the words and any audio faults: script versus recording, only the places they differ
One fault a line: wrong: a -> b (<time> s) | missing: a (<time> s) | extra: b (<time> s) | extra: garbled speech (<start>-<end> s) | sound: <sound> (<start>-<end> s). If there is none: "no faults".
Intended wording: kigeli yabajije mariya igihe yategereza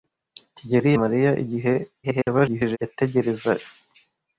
missing: yabajije (0.9 s)
extra: garbled speech (2.0-2.8 s)